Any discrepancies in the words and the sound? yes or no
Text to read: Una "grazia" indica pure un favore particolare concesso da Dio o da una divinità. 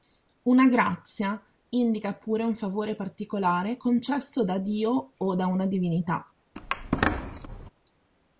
yes